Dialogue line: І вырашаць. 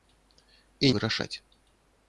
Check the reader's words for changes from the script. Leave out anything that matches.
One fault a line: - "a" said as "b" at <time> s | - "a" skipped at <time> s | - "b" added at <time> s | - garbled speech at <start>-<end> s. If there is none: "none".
none